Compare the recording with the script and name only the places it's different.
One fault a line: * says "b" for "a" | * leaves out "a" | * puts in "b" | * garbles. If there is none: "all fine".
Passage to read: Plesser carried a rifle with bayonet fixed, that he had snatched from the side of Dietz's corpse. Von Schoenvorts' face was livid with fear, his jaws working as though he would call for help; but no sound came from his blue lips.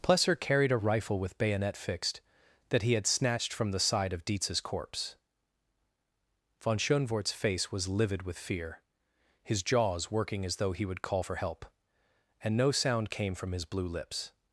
* says "and" for "but"